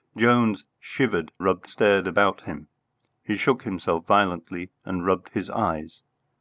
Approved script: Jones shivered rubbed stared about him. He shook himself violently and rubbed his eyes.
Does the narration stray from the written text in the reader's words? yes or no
no